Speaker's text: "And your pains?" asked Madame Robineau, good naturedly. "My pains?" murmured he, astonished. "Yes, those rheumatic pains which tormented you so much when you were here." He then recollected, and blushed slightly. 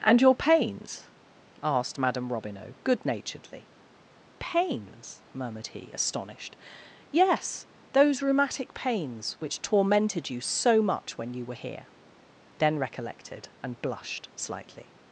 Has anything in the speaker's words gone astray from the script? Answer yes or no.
yes